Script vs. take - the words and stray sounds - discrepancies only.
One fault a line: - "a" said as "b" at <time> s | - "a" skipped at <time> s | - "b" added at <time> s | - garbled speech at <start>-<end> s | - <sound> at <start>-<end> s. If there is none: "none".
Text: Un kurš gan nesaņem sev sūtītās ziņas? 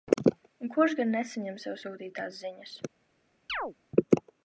- chirp at 3.5-3.7 s